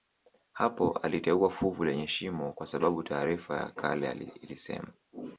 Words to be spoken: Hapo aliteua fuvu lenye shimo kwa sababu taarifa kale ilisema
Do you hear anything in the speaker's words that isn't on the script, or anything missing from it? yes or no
yes